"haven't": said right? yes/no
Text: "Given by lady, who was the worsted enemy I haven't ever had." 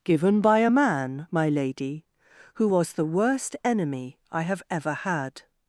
no